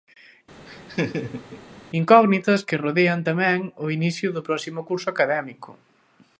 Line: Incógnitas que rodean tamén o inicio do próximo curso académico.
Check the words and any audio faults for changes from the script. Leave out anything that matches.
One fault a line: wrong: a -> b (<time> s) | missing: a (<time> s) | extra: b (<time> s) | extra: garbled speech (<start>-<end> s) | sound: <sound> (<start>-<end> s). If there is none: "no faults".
sound: laugh (0.7-1.6 s)